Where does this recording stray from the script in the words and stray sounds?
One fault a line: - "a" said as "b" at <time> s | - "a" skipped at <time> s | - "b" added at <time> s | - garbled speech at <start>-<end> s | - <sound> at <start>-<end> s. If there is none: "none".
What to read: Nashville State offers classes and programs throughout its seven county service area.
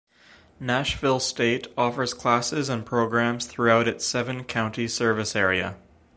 none